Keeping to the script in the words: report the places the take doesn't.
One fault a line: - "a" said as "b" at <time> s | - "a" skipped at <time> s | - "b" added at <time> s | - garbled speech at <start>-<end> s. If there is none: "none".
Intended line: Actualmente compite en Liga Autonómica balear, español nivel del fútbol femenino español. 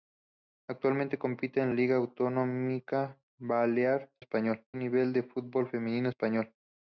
none